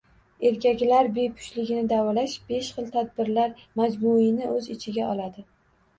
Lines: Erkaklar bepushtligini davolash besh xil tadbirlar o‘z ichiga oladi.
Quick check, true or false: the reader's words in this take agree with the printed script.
false